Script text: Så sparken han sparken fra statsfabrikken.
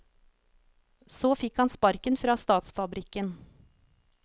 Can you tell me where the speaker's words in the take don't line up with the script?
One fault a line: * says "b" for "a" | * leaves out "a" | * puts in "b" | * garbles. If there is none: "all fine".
* says "fikk" for "sparken"